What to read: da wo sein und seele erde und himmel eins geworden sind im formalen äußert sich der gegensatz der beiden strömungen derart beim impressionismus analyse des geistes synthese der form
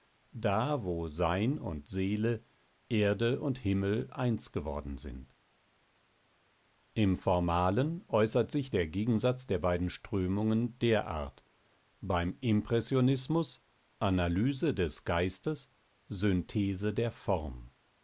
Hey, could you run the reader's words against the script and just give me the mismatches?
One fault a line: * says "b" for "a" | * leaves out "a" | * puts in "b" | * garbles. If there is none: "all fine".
all fine